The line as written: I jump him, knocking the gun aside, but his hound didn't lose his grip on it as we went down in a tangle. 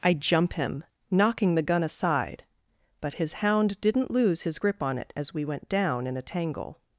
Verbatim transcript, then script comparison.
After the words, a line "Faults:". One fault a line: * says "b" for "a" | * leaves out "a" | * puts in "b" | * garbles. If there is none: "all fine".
I jump him, knocking the gun aside, but his hound didn't lose his grip on it as we went down in a tangle.
Faults:
all fine